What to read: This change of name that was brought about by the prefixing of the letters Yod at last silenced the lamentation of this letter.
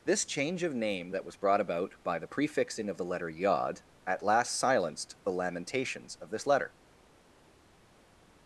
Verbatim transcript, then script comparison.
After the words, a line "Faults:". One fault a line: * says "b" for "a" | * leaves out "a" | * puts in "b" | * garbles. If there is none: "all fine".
This change of name that was brought about by the prefixing of the letter Yod at last silenced the lamentations of this letter.
Faults:
* says "letter" for "letters"
* says "lamentations" for "lamentation"